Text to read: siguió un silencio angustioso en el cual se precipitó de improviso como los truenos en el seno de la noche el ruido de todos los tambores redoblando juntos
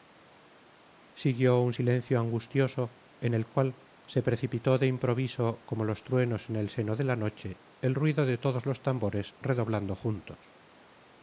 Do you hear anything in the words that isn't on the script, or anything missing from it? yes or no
no